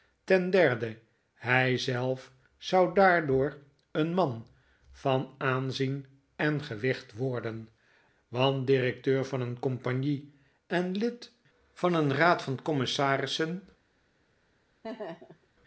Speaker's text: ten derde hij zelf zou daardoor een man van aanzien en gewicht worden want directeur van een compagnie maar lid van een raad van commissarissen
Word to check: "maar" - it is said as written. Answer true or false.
false